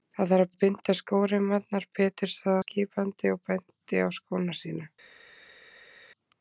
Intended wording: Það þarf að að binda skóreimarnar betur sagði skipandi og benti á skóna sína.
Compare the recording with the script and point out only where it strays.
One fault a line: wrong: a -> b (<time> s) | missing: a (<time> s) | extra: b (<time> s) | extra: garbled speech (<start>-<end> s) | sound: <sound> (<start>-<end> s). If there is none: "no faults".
no faults